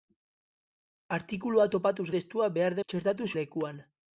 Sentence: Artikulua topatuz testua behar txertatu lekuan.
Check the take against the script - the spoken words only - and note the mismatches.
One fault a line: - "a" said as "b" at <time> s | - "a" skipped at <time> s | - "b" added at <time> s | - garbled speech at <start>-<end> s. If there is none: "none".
none